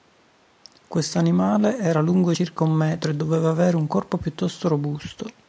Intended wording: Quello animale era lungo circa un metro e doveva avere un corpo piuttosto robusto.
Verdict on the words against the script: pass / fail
fail